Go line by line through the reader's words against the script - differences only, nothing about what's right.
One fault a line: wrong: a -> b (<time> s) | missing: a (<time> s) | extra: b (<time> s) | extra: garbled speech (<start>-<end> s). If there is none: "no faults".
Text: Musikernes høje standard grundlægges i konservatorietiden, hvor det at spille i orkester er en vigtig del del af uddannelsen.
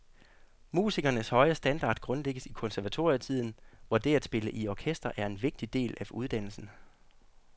missing: del (6.0 s)